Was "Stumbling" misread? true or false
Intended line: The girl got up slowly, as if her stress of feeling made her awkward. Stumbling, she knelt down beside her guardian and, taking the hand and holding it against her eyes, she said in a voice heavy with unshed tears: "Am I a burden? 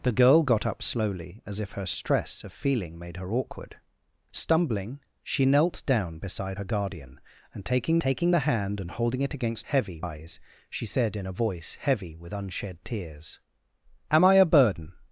false